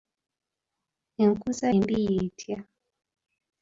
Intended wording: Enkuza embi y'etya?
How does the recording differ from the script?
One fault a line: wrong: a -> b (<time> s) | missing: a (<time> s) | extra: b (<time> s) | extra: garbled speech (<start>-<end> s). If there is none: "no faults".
no faults